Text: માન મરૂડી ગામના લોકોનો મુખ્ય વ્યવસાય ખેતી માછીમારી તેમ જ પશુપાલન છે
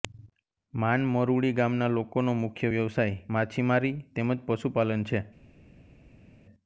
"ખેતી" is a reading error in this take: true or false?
true